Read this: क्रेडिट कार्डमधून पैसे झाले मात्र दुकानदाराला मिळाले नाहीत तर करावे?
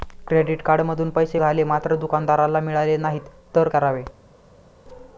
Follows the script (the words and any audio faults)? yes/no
yes